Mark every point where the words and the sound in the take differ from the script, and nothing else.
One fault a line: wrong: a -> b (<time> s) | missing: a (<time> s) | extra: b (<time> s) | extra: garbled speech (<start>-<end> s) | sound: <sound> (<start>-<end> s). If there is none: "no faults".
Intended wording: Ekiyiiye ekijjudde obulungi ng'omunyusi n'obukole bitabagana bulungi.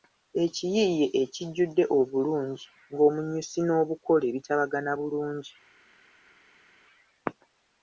no faults